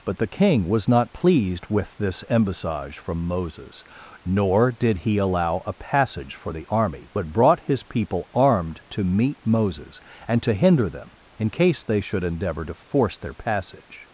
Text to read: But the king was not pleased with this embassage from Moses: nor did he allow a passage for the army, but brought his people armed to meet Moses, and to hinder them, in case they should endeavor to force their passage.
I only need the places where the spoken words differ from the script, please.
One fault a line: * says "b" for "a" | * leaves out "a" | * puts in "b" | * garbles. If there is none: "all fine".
all fine